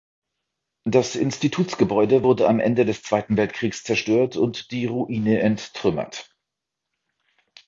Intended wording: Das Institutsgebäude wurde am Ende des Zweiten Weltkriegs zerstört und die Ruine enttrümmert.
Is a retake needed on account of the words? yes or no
no